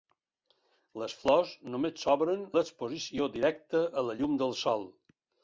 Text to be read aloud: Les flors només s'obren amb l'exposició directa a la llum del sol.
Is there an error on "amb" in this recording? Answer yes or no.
yes